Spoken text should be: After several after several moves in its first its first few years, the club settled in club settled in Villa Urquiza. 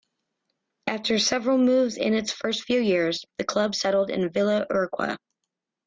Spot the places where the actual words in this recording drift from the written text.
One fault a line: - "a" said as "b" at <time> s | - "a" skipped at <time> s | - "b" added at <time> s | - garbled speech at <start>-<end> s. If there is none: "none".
- "after several" skipped at 1.6 s
- "its first" skipped at 2.6 s
- "club settled in" skipped at 4.3 s